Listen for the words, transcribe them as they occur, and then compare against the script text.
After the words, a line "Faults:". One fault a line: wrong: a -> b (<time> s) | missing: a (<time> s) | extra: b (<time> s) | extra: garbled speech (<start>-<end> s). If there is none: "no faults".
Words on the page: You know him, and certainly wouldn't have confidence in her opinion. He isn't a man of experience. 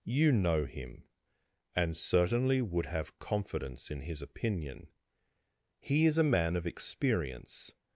You know him, and certainly would have confidence in his opinion. He is a man of experience.
Faults:
wrong: wouldn't -> would (2.6 s)
wrong: her -> his (4.0 s)
wrong: isn't -> is (6.0 s)